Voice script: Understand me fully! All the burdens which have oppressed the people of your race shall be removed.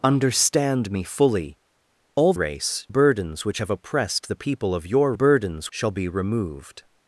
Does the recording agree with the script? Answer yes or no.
no